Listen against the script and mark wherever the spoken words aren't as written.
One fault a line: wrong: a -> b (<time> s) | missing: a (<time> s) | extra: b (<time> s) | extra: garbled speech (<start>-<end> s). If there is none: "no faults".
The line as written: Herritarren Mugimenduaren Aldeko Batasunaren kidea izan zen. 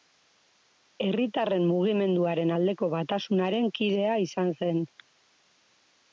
no faults